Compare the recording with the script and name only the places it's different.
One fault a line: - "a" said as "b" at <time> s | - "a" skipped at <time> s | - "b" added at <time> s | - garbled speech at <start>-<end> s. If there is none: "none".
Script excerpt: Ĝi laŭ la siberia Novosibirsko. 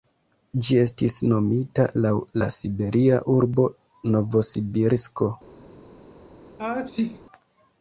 - "estis nomita" added at 0.8 s
- "urbo" added at 3.4 s